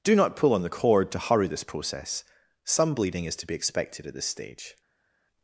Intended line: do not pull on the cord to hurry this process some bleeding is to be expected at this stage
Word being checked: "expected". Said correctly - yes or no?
yes